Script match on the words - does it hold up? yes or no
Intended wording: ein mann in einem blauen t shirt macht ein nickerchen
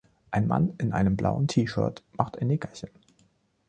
yes